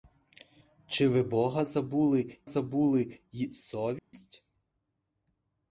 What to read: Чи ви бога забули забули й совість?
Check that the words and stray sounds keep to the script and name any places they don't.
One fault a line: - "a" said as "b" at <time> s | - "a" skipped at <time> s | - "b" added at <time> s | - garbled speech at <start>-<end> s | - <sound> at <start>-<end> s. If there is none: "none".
- dropout at 4.0-4.1 s